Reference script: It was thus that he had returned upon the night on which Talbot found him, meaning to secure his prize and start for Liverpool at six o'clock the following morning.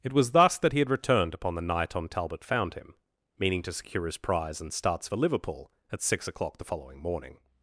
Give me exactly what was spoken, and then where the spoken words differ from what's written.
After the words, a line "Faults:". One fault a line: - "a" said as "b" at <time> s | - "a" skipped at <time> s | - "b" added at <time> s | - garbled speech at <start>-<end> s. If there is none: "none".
It was thus that he had returned upon the night on Talbot found him, meaning to secure his prize and starts for Liverpool at six o'clock the following morning.
Faults:
- "which" skipped at 2.1 s
- "start" said as "starts" at 4.7 s